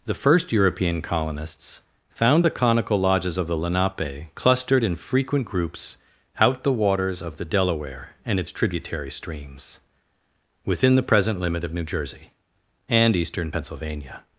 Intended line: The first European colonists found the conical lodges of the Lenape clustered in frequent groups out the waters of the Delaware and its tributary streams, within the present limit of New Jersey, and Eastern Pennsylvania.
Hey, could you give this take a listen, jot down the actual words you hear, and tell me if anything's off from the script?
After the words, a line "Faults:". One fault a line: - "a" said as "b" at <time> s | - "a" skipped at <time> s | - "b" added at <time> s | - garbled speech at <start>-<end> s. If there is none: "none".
The first European colonists found the conical lodges of the Lenape clustered in frequent groups out the waters of the Delaware and its tributary streams, within the present limit of New Jersey, and Eastern Pennsylvania.
Faults:
none